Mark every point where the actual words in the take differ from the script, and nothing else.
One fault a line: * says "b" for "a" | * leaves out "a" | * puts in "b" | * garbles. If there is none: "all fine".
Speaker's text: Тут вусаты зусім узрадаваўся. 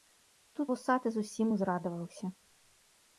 all fine